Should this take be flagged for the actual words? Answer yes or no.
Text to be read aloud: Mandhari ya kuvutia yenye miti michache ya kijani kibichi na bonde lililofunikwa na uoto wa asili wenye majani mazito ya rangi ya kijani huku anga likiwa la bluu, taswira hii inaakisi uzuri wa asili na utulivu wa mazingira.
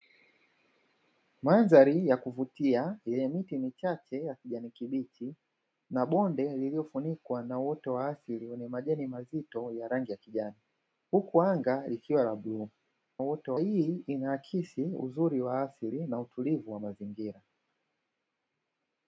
yes